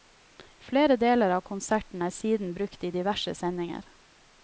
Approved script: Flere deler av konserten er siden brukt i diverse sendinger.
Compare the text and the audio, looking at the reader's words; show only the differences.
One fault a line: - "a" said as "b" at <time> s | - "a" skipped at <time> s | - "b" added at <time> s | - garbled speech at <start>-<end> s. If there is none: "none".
none